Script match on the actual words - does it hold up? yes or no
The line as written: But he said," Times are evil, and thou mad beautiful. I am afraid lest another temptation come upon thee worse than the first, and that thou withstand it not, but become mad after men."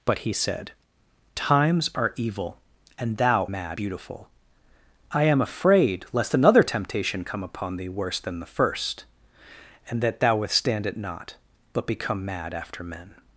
yes